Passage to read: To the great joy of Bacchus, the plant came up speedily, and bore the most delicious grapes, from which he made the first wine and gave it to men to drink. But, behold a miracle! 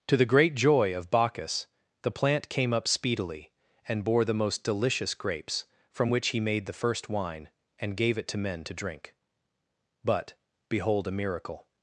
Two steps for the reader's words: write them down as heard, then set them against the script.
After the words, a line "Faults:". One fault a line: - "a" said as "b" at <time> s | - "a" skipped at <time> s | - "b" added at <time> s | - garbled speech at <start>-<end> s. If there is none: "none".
To the great joy of Bacchus, the plant came up speedily, and bore the most delicious grapes, from which he made the first wine and gave it to men to drink. But, behold a miracle!
Faults:
none